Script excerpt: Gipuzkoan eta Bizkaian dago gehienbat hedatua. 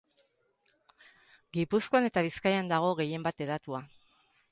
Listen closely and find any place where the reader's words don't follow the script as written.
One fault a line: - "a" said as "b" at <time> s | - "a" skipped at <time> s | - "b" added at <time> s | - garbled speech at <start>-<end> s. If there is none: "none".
none